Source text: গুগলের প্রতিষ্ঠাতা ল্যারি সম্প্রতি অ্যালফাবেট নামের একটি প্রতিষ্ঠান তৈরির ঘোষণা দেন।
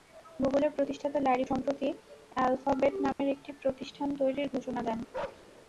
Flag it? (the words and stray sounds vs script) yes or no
yes